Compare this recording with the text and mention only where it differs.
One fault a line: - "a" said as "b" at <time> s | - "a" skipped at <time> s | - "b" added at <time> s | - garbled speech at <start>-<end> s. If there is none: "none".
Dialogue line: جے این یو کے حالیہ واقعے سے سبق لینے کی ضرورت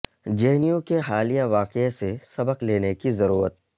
none